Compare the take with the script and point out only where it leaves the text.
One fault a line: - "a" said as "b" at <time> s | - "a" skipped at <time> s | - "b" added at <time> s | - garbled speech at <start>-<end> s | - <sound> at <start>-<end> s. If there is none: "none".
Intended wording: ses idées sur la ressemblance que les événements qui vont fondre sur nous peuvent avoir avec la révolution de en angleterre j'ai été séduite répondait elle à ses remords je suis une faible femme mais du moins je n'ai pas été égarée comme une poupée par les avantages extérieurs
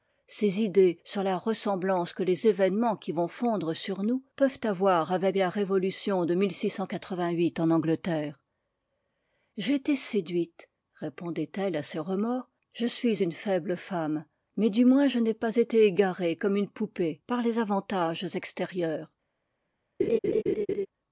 - laugh at 20.0-20.9 s